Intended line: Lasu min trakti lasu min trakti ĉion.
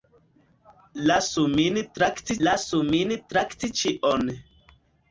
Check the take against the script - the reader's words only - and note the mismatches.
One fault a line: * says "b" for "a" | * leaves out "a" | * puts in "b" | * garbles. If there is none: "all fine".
all fine